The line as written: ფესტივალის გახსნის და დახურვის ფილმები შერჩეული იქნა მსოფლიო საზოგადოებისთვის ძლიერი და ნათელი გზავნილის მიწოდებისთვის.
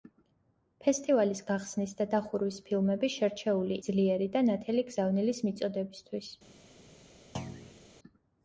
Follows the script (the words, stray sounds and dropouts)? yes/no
no